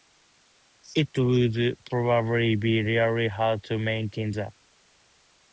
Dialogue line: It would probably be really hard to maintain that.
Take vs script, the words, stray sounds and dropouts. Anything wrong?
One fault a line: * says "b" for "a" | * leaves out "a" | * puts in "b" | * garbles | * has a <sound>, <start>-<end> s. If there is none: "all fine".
all fine